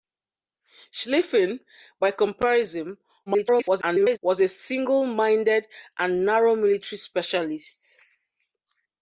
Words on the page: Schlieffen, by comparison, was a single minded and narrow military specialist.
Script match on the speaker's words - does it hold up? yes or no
no